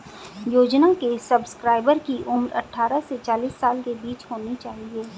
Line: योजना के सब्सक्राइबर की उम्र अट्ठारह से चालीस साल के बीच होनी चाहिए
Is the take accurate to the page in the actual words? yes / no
yes